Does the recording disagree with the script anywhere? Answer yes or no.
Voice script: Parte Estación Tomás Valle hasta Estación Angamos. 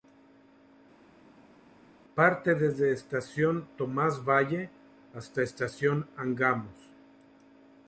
yes